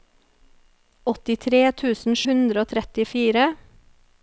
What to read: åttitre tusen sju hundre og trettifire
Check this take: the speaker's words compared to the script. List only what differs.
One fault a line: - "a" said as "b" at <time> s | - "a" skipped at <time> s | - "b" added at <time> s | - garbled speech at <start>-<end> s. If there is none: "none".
- "sju" skipped at 2.2 s